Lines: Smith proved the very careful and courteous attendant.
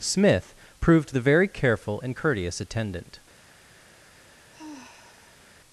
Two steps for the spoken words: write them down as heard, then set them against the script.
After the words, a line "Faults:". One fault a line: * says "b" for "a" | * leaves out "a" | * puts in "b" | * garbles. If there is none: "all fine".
Smith proved the very careful and courteous attendant.
Faults:
all fine